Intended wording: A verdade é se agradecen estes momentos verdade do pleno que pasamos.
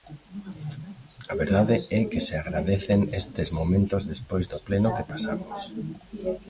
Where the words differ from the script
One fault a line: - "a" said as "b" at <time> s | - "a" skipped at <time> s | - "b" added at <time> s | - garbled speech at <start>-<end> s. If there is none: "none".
- "que" added at 2.1 s
- "verdade" said as "despois" at 4.1 s